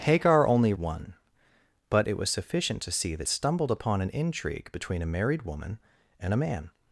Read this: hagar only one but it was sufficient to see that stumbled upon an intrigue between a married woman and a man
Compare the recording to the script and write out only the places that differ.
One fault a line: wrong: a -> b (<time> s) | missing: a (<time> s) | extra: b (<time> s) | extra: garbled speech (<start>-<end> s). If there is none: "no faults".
no faults